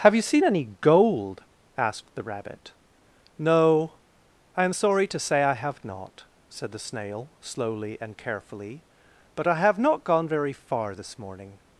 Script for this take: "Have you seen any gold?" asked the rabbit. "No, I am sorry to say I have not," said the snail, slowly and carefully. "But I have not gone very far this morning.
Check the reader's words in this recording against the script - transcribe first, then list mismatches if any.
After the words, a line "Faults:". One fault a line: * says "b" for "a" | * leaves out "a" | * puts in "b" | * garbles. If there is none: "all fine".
"Have you seen any gold?" asked the rabbit. "No, I am sorry to say I have not," said the snail, slowly and carefully. "But I have not gone very far this morning.
Faults:
all fine